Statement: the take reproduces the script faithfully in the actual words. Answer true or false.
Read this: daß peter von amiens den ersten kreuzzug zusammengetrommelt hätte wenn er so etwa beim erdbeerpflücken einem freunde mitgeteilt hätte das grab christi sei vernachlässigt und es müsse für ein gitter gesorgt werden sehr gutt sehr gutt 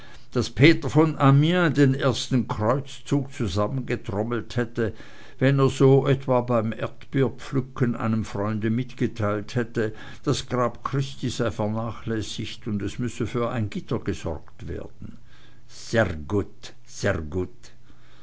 true